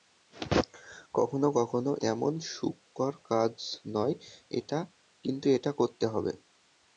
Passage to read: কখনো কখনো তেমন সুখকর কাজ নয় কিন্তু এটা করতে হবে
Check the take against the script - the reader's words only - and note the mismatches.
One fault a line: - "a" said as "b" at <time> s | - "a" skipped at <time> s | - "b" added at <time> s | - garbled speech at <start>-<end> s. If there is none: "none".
none